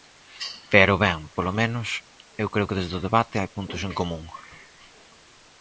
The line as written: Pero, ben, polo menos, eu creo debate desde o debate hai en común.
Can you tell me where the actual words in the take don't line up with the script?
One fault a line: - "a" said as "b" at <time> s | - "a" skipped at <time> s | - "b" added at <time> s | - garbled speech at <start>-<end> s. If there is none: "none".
- "debate" said as "que" at 2.7 s
- "puntos" added at 3.6 s